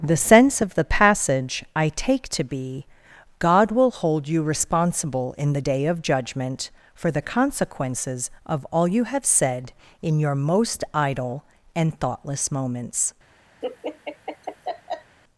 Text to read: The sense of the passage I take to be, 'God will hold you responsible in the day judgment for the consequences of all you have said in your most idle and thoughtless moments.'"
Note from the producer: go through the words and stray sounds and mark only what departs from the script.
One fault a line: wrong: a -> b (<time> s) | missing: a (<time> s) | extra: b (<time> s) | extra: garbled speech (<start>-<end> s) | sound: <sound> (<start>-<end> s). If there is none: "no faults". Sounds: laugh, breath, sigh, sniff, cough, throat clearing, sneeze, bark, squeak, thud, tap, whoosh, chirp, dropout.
extra: of (5.8 s)
sound: laugh (13.6-15.2 s)